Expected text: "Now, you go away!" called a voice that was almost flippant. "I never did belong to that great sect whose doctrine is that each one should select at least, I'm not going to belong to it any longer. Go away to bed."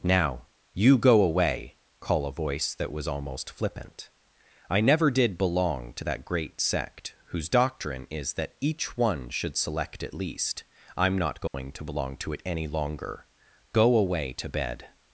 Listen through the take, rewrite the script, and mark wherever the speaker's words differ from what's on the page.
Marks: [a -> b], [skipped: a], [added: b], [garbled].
"Now, you go away!" [called -> call] a voice that was almost flippant. "I never did belong to that great sect whose doctrine is that each one should select at least, I'm not going to belong to it any longer. Go away to bed."